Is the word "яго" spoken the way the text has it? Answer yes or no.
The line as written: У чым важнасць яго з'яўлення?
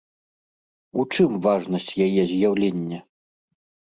no